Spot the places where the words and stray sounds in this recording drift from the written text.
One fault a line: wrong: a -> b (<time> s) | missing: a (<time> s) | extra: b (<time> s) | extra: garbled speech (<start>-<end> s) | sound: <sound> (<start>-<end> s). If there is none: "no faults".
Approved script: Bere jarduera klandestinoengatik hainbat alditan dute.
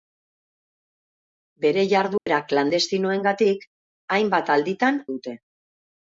sound: dropout (2.2-2.3 s)